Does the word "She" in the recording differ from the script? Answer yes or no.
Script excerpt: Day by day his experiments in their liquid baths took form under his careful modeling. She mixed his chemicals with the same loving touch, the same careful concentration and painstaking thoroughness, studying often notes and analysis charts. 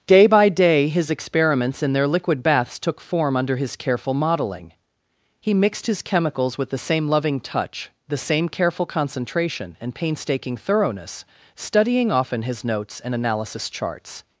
yes